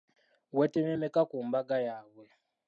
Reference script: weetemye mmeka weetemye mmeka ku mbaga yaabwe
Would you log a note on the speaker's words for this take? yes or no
yes